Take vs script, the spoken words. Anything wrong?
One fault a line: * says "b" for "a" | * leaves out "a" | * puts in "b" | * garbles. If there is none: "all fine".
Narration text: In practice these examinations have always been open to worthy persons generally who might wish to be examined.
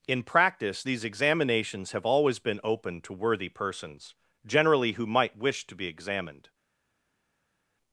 all fine